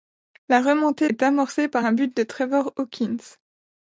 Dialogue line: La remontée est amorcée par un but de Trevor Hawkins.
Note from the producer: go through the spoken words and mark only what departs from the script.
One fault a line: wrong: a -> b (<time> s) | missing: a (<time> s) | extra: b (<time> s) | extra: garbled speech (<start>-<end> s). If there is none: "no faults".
no faults